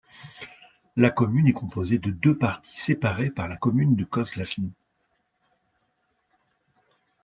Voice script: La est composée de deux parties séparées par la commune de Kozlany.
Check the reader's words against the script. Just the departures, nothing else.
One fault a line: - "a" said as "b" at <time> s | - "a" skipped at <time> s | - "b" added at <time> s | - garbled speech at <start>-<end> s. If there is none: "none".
- "commune" added at 1.1 s